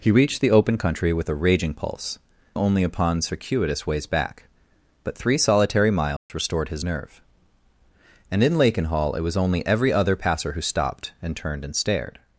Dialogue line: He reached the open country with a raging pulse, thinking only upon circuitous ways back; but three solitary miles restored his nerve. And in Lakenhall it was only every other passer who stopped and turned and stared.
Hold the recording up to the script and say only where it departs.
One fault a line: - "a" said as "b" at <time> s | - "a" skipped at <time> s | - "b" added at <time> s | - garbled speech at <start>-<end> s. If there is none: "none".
- "thinking" skipped at 2.2 s